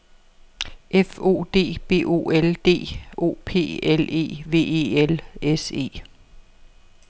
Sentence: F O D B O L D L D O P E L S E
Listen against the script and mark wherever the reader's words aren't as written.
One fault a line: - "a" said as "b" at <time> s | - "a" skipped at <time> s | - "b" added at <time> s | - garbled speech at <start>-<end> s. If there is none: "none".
- "O P" added at 3.2 s
- "D O P" said as "E V" at 4.0 s